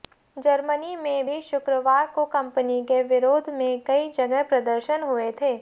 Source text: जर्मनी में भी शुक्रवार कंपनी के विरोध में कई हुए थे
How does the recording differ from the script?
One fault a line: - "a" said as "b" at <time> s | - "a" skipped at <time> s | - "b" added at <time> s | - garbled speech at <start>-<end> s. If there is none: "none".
- "को" added at 2.1 s
- "जगह प्रदर्शन" added at 4.1 s